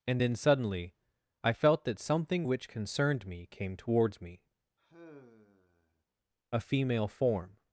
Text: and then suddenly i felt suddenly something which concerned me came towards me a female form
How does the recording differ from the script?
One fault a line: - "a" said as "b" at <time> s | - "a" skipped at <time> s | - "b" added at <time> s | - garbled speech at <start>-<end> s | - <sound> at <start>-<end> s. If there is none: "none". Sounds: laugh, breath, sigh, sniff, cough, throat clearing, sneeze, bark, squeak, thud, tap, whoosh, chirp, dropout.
- "suddenly" said as "that" at 1.8 s
- sigh at 4.8-6.0 s